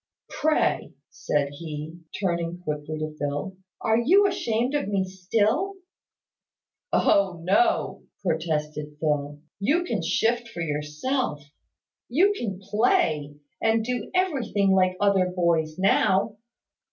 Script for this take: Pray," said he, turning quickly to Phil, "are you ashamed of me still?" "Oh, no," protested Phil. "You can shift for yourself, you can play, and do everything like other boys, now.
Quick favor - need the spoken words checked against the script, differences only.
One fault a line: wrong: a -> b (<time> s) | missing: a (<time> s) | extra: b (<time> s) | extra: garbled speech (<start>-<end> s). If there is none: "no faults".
no faults